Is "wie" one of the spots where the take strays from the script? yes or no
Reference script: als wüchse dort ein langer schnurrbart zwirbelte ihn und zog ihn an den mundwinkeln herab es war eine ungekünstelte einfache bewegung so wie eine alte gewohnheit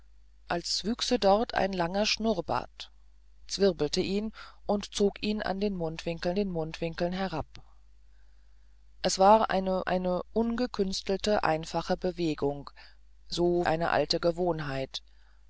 yes